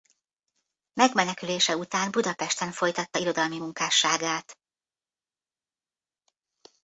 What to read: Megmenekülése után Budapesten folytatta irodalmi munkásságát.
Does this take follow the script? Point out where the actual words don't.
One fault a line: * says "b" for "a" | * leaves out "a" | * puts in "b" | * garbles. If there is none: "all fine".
all fine